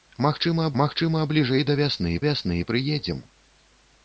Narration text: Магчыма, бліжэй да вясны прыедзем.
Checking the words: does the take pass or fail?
fail